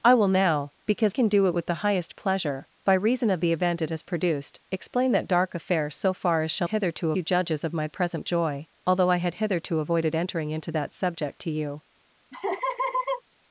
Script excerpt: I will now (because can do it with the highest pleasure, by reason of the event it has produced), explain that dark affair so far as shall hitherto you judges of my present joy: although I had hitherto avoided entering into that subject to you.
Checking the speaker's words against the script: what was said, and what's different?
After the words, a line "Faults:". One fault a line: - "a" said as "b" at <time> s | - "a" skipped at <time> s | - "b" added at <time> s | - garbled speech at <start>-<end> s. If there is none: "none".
I will now (because can do it with the highest pleasure, by reason of the event it has produced), explain that dark affair so far as shall hitherto you judges of my present joy: although I had hitherto avoided entering into that subject to you.
Faults:
none